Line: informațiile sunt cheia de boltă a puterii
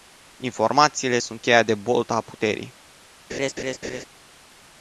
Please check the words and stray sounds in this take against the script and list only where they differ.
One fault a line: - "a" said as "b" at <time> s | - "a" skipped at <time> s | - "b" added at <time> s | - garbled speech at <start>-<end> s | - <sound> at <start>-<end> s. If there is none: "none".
- laugh at 3.3-4.1 s